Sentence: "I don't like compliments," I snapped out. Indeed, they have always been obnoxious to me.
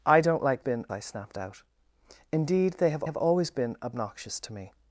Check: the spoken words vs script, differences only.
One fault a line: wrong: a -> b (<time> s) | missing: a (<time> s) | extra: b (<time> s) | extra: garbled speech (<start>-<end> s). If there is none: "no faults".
wrong: compliments -> been (0.6 s)
extra: have (3.0 s)